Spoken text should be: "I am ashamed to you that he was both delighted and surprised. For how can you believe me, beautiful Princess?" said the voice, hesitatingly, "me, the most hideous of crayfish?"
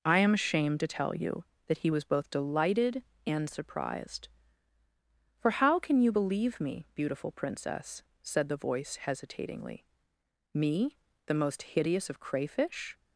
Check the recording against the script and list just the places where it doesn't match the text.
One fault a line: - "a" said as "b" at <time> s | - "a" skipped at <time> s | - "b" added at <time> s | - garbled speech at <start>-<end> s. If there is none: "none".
- "tell" added at 0.9 s